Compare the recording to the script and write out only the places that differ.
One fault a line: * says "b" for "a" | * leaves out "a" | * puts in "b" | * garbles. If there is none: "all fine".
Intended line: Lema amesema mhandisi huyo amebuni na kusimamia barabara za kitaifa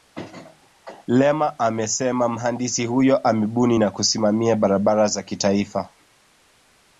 all fine